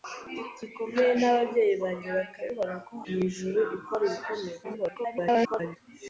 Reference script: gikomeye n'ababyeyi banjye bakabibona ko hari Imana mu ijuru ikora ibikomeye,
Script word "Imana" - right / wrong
wrong